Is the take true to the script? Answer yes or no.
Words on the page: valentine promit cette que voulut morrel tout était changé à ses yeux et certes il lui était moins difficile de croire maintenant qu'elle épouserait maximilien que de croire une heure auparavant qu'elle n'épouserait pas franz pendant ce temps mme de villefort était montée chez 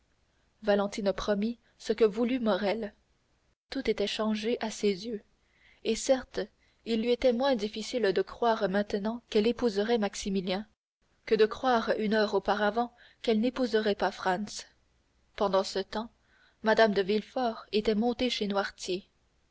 no